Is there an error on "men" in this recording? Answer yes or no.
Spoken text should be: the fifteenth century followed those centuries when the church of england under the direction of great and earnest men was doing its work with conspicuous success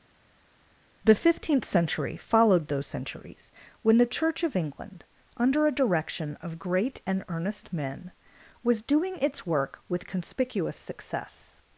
no